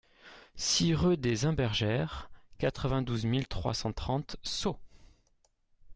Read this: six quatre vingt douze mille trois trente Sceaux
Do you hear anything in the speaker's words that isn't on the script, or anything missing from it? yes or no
yes